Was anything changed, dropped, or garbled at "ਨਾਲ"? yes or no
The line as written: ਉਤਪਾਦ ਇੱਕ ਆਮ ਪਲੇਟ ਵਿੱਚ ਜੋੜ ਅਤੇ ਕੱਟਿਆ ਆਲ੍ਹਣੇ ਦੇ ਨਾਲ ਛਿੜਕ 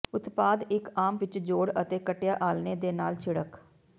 no